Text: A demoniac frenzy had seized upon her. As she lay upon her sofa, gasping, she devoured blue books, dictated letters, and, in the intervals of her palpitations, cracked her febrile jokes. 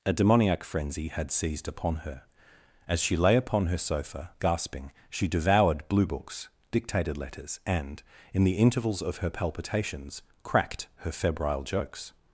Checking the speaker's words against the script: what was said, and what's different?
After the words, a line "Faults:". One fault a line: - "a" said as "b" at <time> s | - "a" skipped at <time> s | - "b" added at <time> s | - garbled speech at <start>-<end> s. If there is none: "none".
A demoniac frenzy had seized upon her. As she lay upon her sofa, gasping, she devoured blue books, dictated letters, and, in the intervals of her palpitations, cracked her febrile jokes.
Faults:
none